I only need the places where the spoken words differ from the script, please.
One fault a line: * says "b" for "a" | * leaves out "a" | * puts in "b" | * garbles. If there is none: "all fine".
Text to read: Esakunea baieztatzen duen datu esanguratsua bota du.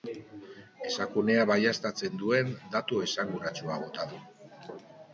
all fine